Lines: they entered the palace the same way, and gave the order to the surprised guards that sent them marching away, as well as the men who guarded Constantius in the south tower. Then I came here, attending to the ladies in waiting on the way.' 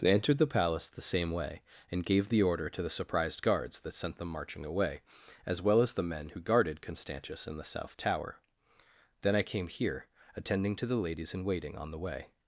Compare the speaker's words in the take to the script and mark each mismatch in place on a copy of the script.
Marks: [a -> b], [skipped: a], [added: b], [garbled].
they entered the palace the same way, and gave the order to the surprised guards that sent them marching away, as well as the men who guarded Constantius in the south tower. Then I came here, attending to the ladies in waiting on the way.'